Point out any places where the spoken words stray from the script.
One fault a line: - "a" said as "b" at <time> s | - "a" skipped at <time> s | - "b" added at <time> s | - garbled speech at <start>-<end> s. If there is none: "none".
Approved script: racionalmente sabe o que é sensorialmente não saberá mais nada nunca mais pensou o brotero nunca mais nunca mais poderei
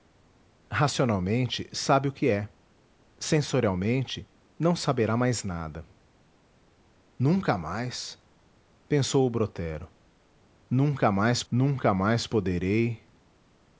none